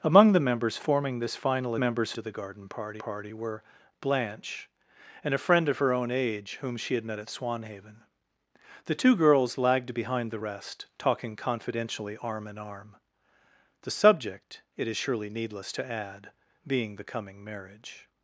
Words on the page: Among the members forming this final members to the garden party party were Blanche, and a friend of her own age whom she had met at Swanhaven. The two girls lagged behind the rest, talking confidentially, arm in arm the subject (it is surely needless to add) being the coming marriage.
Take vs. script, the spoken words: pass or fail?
pass